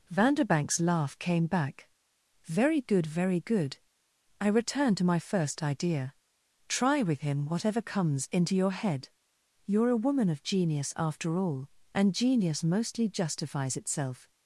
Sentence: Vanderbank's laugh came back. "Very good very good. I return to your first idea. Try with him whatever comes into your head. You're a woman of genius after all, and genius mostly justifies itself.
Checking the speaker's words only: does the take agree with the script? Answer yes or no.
no